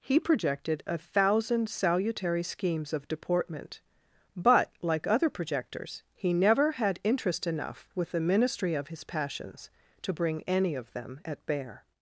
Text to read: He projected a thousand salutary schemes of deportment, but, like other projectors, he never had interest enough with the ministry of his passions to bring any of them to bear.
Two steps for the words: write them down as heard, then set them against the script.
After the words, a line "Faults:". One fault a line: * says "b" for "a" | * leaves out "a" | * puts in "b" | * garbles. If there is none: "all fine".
He projected a thousand salutary schemes of deportment, but, like other projectors, he never had interest enough with the ministry of his passions to bring any of them at bear.
Faults:
* says "at" for "to"